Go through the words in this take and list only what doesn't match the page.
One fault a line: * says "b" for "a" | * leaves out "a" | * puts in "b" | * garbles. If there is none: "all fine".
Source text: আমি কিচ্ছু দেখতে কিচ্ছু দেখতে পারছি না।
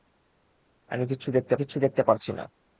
all fine